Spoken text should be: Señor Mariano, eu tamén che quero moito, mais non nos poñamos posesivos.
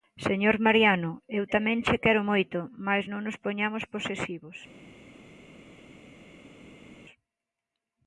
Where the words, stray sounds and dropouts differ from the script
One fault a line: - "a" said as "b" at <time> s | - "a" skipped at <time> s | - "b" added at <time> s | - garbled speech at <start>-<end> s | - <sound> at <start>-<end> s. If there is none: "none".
none